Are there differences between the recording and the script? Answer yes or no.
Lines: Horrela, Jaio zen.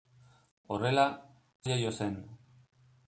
no